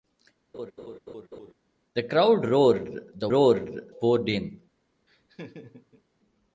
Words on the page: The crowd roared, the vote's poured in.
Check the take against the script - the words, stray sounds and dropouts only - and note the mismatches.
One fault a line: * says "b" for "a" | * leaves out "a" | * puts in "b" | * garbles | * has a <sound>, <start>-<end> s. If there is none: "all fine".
* has a laugh, 0.5-1.5 s
* says "roared" for "vote's"
* has a laugh, 5.1-6.0 s